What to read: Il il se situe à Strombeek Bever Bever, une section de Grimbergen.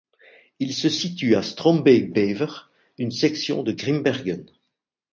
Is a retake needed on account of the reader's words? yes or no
yes